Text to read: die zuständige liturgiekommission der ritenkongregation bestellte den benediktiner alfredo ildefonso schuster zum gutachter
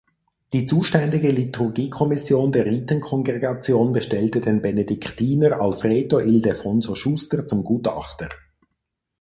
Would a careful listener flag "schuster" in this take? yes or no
no